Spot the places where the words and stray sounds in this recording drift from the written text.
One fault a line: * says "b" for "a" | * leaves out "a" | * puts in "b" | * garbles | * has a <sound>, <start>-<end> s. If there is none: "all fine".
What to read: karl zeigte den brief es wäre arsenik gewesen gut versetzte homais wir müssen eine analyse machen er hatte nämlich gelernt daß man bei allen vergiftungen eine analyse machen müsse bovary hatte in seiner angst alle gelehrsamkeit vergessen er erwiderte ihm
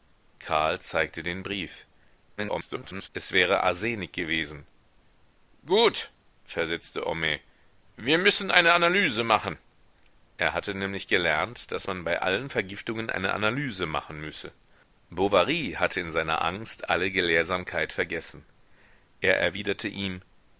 * garbles